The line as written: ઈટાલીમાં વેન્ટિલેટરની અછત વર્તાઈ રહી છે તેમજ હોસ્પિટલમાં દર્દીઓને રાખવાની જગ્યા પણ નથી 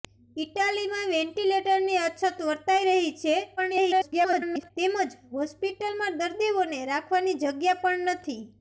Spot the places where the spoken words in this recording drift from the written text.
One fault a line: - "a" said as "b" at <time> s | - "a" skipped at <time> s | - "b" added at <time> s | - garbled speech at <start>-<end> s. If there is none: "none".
- garbled speech at 3.6-4.7 s